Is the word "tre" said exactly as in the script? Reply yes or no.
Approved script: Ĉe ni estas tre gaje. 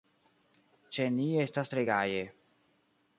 yes